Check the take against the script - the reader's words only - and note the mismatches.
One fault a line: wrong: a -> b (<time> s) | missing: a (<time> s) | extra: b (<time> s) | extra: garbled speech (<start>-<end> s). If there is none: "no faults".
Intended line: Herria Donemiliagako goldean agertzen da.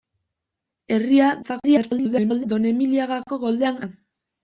extra: garbled speech (1.4-2.5 s)
missing: agertzen (3.8 s)